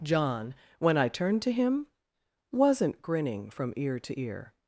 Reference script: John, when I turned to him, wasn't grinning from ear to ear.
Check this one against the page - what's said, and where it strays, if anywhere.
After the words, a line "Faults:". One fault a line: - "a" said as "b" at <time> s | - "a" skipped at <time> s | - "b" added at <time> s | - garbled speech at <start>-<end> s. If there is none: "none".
John, when I turned to him, wasn't grinning from ear to ear.
Faults:
none